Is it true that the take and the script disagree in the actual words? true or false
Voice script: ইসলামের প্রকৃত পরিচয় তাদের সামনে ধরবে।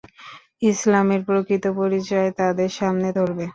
false